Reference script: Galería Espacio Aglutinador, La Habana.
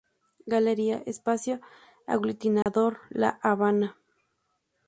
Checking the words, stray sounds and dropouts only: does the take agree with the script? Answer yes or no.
no